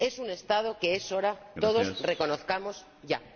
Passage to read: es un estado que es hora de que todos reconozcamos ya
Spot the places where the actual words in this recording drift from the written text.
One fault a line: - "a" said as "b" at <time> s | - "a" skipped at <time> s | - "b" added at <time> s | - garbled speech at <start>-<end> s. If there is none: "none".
- "de" skipped at 1.4 s